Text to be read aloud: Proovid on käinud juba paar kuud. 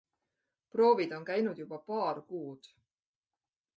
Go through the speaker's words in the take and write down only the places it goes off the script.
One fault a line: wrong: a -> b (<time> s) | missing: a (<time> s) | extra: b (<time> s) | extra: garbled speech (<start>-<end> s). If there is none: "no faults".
no faults